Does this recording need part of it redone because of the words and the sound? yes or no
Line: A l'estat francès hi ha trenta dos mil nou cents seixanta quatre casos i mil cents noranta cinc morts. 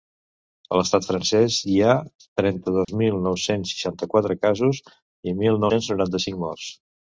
yes